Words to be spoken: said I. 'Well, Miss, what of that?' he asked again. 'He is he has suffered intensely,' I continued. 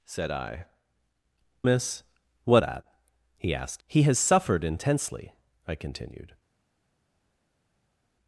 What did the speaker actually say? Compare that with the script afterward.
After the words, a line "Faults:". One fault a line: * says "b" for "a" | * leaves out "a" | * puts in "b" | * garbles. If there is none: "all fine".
said I. 'Miss, what that?' he asked he has suffered intensely,' I continued.
Faults:
* leaves out "Well"
* leaves out "of"
* leaves out "again He is"